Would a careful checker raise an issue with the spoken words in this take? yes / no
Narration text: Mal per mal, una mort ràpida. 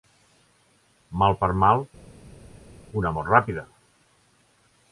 no